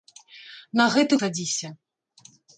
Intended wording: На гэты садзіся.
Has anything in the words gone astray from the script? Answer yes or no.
no